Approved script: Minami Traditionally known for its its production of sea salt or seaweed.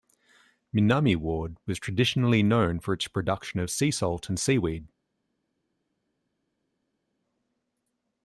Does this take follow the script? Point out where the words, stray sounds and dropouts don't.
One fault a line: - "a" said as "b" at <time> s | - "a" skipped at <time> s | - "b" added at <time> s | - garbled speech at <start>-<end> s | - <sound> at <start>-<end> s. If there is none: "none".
- "Ward was" added at 1.1 s
- "its" skipped at 3.1 s
- "or" said as "and" at 4.3 s